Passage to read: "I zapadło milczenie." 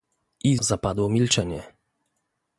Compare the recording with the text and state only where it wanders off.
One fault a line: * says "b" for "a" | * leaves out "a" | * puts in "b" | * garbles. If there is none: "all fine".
all fine